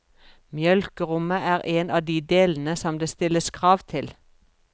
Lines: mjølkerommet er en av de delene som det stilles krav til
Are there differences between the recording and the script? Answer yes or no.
no